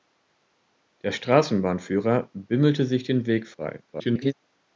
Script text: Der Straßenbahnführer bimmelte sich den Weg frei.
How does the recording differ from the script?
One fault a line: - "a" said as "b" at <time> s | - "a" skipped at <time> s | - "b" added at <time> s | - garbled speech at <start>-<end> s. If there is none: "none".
- garbled speech at 3.9-4.3 s